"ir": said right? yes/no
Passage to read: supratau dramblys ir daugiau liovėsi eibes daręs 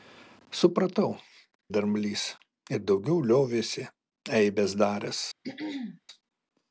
yes